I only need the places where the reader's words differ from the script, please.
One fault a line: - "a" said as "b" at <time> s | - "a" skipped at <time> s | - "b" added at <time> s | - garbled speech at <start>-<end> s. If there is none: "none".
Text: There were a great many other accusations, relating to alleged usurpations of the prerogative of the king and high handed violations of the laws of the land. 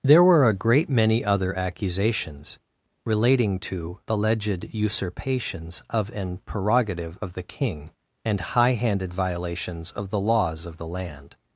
- "the" said as "an" at 6.1 s